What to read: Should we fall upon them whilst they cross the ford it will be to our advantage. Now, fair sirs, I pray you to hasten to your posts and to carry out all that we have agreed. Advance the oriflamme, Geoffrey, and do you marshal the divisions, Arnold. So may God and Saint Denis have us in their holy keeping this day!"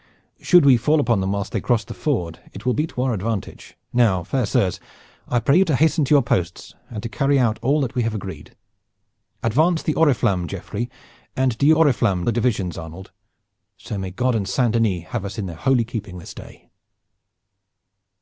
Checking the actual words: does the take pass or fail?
fail